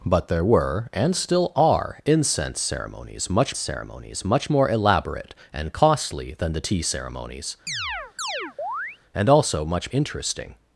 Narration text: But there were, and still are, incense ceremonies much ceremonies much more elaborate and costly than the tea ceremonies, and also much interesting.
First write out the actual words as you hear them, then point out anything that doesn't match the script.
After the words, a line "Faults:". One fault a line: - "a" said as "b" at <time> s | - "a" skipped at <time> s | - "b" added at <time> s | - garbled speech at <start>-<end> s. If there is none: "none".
But there were, and still are, incense ceremonies much ceremonies much more elaborate and costly than the tea ceremonies, and also much interesting.
Faults:
none